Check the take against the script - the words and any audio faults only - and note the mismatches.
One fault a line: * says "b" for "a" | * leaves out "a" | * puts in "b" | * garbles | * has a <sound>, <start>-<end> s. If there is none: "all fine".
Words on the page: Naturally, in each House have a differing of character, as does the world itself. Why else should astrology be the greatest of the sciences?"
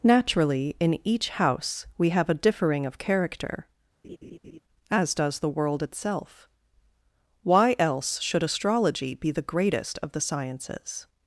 * puts in "we"
* has a laugh, 4.0-4.6 s